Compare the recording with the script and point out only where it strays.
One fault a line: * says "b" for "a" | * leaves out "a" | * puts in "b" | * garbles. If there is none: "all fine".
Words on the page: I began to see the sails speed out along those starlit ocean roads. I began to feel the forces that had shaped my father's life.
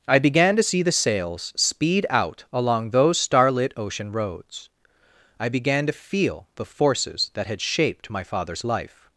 all fine